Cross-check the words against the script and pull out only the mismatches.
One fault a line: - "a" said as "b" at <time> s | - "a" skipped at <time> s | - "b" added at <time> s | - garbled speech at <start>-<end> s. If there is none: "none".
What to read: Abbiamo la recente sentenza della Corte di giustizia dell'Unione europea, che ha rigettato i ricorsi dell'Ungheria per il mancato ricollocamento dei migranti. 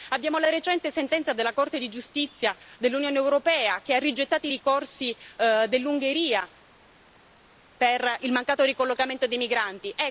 none